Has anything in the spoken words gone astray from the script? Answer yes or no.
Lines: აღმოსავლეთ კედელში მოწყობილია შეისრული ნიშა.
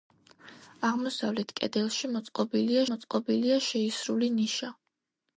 yes